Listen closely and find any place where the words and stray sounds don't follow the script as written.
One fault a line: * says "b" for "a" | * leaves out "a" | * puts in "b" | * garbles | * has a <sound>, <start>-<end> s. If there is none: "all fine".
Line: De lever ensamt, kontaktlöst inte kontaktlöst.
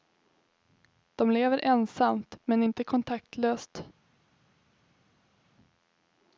* says "men" for "kontaktlöst"